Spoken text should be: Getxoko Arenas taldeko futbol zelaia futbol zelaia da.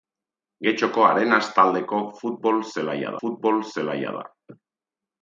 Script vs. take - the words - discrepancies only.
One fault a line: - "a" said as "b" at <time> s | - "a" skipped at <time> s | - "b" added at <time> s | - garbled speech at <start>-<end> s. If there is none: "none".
none